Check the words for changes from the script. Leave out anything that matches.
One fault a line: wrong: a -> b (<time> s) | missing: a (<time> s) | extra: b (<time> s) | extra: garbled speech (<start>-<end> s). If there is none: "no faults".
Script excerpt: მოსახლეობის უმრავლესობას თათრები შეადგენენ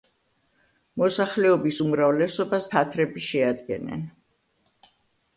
no faults